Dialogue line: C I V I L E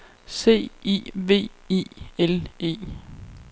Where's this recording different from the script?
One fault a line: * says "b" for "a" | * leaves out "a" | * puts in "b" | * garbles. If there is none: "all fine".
all fine